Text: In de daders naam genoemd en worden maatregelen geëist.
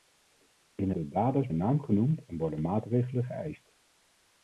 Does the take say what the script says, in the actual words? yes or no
yes